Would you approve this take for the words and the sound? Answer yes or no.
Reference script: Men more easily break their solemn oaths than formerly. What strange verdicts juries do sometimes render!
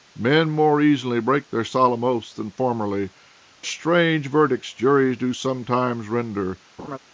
no